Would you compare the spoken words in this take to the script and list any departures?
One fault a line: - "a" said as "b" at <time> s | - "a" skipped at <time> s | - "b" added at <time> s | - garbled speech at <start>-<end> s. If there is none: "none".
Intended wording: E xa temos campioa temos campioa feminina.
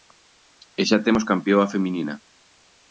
- "temos campioa" skipped at 1.7 s